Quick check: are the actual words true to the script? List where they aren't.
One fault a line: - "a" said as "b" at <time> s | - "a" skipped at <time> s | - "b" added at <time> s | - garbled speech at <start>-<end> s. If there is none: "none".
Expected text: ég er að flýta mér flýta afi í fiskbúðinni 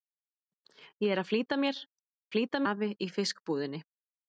none